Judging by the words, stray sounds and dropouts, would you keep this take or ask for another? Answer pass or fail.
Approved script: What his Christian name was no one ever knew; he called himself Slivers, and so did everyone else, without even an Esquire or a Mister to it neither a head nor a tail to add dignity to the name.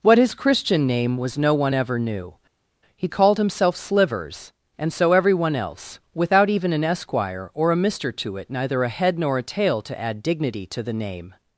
fail